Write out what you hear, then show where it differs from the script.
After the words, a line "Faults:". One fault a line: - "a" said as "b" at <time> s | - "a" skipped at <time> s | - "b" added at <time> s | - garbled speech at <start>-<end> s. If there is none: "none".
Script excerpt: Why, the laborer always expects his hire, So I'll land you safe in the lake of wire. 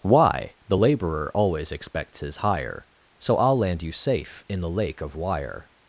Why, the laborer always expects his hire, So I'll land you safe in the lake of wire.
Faults:
none